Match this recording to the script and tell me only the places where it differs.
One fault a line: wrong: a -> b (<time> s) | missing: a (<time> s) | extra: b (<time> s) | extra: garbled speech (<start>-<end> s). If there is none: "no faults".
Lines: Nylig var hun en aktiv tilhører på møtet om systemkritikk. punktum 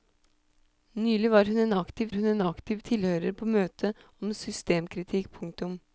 extra: hun en aktiv (2.1 s)